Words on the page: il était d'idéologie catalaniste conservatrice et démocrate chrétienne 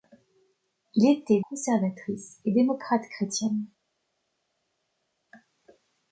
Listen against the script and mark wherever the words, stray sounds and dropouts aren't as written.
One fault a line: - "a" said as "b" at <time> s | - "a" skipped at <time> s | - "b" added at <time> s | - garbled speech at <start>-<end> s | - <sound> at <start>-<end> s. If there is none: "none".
- "d'idéologie catalaniste" skipped at 1.4 s